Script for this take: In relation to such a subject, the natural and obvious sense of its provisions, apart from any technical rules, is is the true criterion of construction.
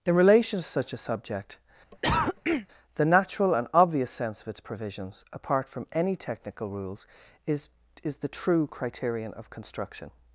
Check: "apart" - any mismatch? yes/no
no